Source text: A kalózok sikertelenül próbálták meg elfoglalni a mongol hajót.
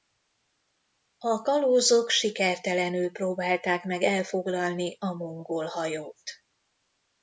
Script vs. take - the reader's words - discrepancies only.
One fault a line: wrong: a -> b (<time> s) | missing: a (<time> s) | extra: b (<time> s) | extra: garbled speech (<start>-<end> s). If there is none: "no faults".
no faults